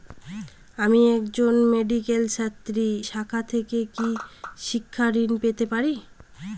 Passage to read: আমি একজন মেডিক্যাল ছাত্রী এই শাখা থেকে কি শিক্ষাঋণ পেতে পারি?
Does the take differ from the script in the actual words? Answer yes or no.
yes